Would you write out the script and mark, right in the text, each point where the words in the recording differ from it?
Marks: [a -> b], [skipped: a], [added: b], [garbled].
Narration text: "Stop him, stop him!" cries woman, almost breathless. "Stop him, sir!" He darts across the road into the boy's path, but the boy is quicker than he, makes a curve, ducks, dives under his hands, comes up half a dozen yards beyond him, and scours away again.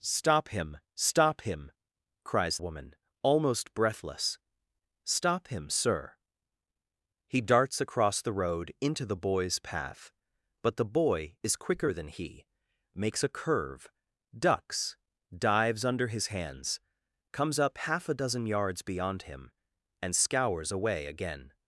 "Stop him, stop him!" cries woman, almost breathless. "Stop him, sir!" He darts across the road into the boy's path, but the boy is quicker than he, makes a curve, ducks, dives under his hands, comes up half a dozen yards beyond him, and scours away again.